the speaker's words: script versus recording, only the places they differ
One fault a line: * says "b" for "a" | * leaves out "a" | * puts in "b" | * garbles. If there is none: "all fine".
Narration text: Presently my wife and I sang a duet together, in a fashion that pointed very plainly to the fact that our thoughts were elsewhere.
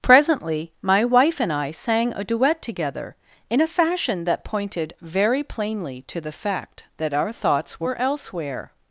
all fine